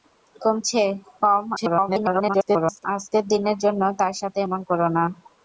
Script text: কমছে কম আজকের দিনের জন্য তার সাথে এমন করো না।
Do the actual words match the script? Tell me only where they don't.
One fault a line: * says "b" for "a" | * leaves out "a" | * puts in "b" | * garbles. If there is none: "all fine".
* garbles